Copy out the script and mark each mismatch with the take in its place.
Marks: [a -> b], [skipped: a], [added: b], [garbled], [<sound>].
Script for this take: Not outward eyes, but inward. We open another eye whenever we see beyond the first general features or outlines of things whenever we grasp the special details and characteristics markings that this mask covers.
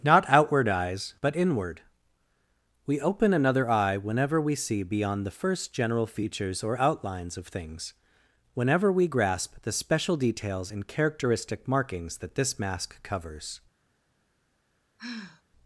Not outward eyes, but inward. We open another eye whenever we see beyond the first general features or outlines of things whenever we grasp the special details and [characteristics -> characteristic] markings that this mask covers. [sigh]